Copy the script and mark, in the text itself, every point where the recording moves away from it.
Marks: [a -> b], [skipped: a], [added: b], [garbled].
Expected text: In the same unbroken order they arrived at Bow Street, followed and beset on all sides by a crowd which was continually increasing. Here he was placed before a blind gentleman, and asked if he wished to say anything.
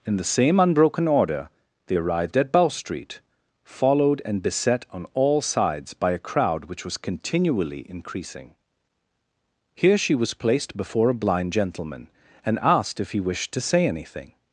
In the same unbroken order they arrived at Bow Street, followed and beset on all sides by a crowd which was continually increasing. Here [he -> she] was placed before a blind gentleman, and asked if he wished to say anything.